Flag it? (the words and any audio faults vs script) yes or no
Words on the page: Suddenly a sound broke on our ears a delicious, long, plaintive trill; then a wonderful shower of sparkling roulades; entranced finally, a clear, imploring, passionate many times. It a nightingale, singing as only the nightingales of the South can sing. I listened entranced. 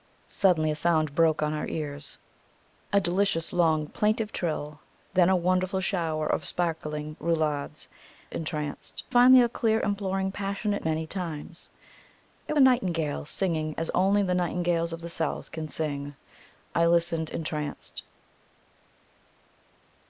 no